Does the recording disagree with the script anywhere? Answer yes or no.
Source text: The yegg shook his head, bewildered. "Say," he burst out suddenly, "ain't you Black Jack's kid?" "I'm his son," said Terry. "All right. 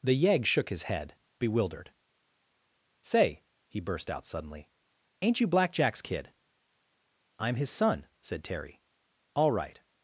no